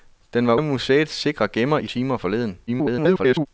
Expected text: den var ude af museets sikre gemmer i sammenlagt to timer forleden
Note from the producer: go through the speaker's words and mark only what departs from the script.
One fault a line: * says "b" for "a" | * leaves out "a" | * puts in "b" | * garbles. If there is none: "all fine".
* leaves out "ude"
* leaves out "sammenlagt to"
* garbles